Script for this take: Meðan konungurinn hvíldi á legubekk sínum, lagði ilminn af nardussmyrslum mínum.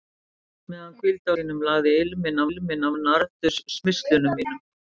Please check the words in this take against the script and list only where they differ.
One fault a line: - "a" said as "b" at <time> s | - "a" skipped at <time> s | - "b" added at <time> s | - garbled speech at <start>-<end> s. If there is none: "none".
- "konungurinn" skipped at 0.9 s
- "legubekk" skipped at 1.3 s
- "ilminn" added at 2.5 s